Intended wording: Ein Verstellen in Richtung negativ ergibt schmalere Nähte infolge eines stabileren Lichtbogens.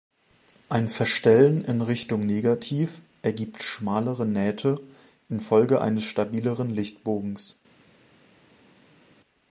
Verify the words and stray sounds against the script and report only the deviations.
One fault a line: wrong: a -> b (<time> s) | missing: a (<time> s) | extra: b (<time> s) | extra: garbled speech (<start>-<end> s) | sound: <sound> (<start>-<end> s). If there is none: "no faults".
no faults